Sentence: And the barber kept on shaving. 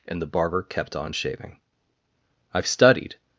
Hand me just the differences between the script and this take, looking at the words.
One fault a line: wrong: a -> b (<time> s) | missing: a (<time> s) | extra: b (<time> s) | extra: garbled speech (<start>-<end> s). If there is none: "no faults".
extra: I've studied (2.5 s)